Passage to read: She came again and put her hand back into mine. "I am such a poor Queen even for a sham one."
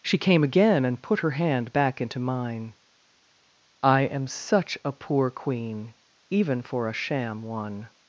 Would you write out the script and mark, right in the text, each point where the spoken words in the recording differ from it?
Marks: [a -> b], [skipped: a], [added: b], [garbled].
She came again and put her hand back into mine. "I am such a poor Queen even for a sham one."